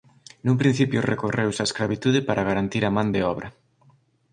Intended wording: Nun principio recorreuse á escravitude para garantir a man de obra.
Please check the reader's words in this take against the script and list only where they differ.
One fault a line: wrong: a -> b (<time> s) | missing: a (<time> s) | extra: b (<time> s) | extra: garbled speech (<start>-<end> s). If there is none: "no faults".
no faults